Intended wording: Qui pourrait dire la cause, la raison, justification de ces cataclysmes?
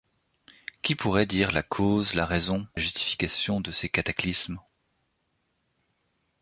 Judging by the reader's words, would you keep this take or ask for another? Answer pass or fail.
pass